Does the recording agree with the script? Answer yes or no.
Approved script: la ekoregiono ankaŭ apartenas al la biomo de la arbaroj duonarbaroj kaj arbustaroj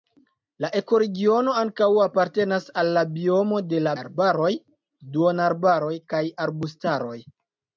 yes